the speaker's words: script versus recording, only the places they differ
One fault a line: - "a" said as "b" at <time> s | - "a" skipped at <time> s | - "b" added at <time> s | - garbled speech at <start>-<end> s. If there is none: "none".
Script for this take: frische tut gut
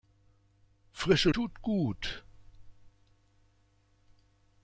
none